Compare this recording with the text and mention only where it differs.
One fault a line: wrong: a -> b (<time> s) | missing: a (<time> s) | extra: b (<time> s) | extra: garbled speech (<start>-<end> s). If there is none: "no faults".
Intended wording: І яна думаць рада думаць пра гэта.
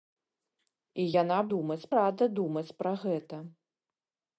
no faults